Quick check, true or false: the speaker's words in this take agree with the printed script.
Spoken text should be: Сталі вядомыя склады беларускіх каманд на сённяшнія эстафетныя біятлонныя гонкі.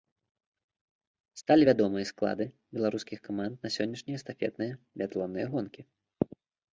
true